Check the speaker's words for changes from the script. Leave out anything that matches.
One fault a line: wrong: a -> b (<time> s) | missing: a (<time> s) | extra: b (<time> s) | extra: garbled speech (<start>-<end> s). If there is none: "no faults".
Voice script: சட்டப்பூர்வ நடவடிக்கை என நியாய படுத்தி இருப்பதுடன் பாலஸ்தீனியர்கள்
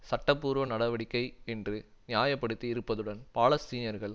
wrong: என -> என்று (1.4 s)